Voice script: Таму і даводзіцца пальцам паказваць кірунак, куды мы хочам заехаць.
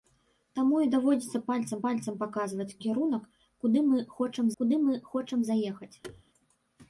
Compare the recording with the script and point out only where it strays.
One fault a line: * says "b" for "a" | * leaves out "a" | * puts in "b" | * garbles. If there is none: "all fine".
* puts in "пальцам"
* puts in "куды мы хочам"